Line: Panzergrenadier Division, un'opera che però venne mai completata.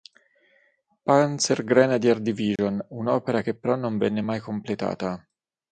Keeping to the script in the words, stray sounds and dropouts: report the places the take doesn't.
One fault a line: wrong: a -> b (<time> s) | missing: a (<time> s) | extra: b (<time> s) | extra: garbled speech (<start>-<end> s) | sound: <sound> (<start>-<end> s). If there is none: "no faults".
sound: dropout (2.6-2.6 s)
extra: non (3.8 s)